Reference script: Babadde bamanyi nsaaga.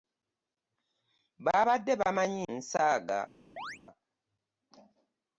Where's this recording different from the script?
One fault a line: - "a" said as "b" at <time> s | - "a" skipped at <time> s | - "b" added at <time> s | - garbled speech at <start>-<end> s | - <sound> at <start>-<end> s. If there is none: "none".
- chirp at 3.6-3.8 s